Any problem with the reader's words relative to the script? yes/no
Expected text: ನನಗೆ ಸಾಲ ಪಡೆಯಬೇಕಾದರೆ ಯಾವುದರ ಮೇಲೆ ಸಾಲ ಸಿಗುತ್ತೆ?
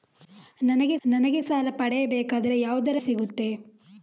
yes